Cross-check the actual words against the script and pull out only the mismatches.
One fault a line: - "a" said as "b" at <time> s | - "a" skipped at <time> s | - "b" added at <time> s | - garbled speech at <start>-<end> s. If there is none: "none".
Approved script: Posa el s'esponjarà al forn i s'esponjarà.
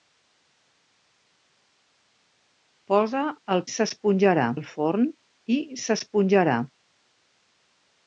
none